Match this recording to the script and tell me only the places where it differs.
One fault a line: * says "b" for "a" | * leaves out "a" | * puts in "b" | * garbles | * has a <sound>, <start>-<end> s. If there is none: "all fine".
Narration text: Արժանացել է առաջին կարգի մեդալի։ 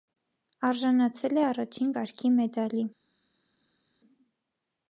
all fine